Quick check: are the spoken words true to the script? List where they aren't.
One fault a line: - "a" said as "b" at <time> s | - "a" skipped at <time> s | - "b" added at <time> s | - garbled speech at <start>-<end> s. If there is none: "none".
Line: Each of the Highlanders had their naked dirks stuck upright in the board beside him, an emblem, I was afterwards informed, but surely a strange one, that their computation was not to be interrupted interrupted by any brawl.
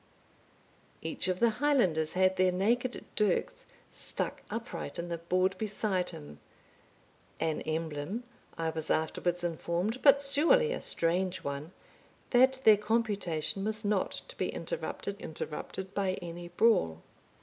none